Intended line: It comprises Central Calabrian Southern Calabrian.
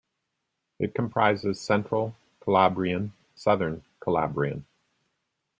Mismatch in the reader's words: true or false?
false